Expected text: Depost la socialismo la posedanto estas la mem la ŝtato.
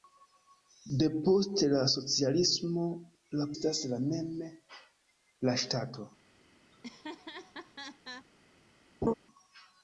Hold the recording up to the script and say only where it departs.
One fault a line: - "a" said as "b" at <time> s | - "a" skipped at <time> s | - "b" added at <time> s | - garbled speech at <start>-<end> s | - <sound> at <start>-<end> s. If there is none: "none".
- "posedanto" skipped at 3.5 s
- laugh at 6.7-8.3 s
- laugh at 9.0-9.1 s